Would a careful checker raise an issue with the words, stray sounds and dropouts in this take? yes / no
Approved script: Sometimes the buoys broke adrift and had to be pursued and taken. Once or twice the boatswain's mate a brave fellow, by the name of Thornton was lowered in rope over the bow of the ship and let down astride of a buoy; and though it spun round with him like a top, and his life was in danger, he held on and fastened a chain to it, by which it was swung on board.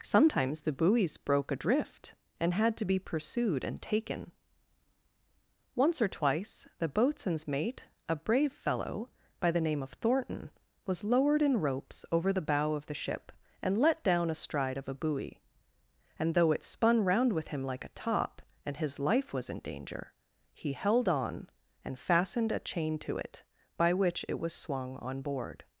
yes